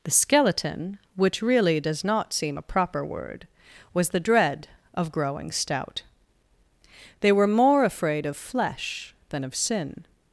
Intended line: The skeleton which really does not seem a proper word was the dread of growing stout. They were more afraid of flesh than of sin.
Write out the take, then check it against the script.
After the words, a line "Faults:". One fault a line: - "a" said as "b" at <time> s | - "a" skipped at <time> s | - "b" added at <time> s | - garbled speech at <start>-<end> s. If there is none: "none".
The skeleton which really does not seem a proper word was the dread of growing stout. They were more afraid of flesh than of sin.
Faults:
none